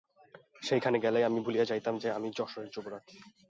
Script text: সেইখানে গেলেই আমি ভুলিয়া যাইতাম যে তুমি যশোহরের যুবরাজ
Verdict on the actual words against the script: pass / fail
fail